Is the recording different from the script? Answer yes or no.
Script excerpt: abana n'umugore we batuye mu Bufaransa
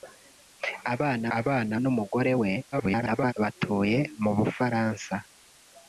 yes